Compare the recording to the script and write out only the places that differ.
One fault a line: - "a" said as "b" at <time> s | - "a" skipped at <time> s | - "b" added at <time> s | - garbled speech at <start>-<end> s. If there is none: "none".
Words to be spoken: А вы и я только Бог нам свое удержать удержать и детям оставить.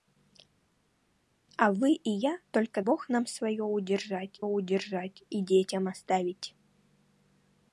none